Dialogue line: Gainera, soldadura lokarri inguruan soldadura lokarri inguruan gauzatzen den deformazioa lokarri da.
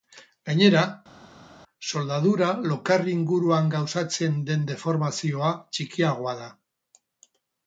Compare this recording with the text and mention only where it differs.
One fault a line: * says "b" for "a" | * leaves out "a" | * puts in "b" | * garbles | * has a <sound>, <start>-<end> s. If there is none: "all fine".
* leaves out "soldadura lokarri inguruan"
* says "txikiagoa" for "lokarri"